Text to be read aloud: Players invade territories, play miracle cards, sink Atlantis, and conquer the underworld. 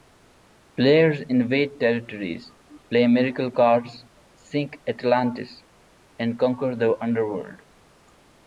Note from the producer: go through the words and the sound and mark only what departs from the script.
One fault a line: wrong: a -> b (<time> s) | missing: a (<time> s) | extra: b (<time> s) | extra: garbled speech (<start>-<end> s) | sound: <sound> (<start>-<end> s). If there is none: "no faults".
no faults